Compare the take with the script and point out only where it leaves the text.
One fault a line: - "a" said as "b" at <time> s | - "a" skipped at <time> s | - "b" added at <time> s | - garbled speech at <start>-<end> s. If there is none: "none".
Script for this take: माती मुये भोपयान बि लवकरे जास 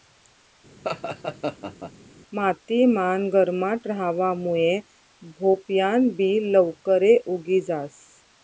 - "मान गरमाट रहावा" added at 2.9 s
- "उगी" added at 7.4 s